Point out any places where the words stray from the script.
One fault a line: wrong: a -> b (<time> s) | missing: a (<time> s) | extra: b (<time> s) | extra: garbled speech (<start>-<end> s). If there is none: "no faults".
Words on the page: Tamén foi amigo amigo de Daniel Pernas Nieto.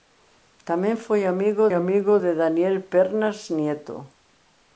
no faults